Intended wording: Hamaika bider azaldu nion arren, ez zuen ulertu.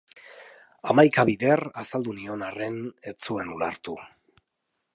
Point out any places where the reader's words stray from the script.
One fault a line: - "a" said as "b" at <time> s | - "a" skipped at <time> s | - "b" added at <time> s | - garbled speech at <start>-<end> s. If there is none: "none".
none